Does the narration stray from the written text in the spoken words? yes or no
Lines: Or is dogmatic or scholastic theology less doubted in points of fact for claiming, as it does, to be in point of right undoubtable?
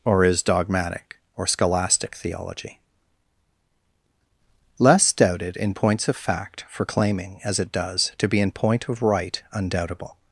no